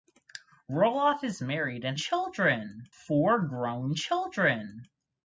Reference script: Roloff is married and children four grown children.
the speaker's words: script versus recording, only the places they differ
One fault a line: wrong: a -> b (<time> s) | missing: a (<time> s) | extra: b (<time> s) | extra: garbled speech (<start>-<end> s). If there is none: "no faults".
no faults